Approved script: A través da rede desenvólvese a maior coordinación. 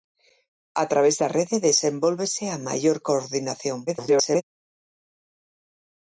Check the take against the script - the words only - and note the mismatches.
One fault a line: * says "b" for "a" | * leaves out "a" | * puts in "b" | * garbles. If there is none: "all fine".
* garbles